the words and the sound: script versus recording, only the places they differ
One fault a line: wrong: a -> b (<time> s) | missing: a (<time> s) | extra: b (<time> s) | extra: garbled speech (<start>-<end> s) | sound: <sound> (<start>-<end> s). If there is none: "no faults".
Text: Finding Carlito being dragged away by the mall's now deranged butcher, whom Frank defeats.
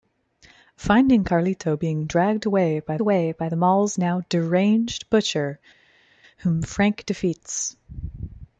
extra: away by (3.0 s)